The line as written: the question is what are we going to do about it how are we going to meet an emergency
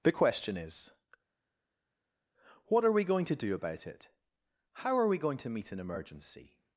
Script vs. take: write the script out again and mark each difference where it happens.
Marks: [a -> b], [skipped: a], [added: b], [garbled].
the question is what are we going to do about it how are we going to meet an emergency